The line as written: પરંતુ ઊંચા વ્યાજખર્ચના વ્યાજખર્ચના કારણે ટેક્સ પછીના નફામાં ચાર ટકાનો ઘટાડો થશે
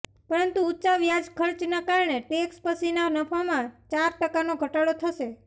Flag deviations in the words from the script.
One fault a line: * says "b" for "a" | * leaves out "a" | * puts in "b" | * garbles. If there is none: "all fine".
* leaves out "વ્યાજખર્ચના"